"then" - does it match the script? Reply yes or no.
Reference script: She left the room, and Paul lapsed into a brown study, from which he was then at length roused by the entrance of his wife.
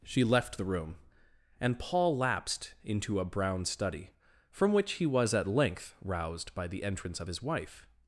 no